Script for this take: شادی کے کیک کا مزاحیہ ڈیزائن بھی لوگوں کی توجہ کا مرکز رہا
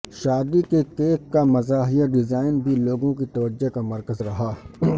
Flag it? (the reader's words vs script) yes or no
no